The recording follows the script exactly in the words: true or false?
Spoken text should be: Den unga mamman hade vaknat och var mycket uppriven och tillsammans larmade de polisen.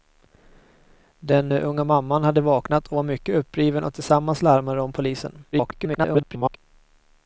false